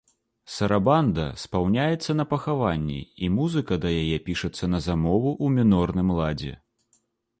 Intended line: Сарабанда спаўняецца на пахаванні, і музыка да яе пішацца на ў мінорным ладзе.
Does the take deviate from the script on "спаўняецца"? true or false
false